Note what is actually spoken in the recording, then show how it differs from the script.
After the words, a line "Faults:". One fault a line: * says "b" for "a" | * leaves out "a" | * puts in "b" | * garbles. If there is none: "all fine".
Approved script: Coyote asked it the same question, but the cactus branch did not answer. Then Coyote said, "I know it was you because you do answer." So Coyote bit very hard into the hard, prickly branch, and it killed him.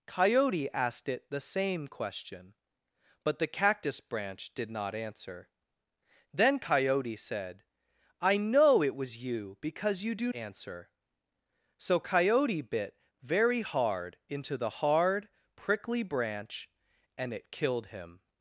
Coyote asked it the same question, but the cactus branch did not answer. Then Coyote said, "I know it was you because you do answer." So Coyote bit very hard into the hard, prickly branch, and it killed him.
Faults:
all fine